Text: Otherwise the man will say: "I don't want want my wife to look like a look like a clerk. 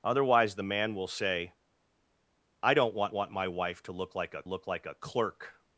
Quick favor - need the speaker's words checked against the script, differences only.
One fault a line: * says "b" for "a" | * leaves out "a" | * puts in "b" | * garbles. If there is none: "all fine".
all fine